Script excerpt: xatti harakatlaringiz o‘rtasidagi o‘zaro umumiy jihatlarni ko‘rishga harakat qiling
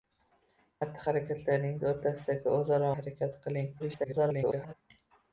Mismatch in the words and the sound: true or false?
true